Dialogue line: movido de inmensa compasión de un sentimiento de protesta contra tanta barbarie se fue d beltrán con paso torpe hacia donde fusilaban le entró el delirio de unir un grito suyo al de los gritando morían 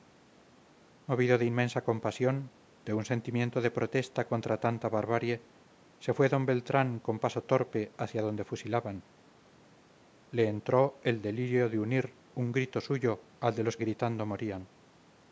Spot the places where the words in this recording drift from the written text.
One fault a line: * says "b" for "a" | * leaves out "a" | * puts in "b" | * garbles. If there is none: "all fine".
all fine